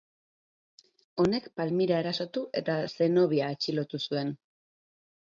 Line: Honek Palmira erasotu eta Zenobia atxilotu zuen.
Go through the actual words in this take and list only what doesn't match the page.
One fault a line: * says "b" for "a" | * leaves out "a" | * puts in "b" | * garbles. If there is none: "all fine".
all fine